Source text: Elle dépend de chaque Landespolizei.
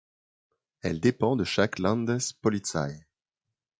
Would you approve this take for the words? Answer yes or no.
yes